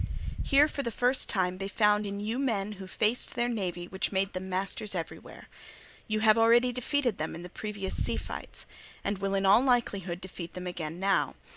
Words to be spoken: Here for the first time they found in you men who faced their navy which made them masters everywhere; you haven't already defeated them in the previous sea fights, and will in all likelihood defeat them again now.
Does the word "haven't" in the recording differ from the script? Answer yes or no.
yes